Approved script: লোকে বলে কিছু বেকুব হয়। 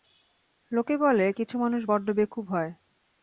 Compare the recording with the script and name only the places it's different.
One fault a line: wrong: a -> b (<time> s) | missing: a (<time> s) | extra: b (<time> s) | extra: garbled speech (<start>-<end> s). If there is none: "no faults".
extra: মানুষ বড্ড (1.6 s)